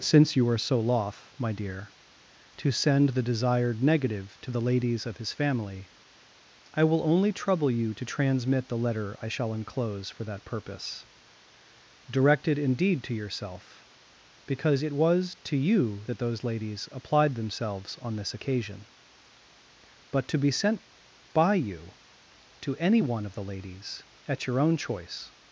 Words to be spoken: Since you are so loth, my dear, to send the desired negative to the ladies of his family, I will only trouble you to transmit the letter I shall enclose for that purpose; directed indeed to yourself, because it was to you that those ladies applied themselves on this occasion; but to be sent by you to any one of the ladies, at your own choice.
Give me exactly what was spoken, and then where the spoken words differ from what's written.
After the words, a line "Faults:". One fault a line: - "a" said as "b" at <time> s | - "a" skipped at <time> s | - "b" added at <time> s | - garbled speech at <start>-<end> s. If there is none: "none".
Since you are so loth, my dear, to send the desired negative to the ladies of his family, I will only trouble you to transmit the letter I shall enclose for that purpose; directed indeed to yourself, because it was to you that those ladies applied themselves on this occasion; but to be sent by you to any one of the ladies, at your own choice.
Faults:
none